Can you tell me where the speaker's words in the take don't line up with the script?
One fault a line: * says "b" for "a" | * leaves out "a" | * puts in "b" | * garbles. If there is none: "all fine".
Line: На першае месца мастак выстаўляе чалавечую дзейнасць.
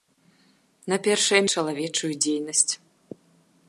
* leaves out "месца мастак выстаўляе"